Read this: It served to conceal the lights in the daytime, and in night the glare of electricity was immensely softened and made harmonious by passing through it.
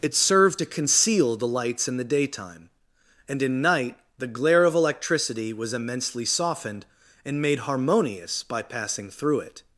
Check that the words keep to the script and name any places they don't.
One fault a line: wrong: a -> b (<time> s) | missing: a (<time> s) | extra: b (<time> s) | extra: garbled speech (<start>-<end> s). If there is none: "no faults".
no faults